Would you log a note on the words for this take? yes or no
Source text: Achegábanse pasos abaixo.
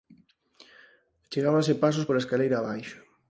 yes